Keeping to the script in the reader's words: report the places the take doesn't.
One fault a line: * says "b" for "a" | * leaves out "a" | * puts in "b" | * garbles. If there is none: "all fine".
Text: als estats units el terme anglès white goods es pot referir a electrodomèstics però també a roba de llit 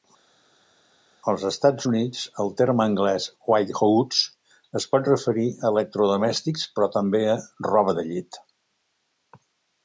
all fine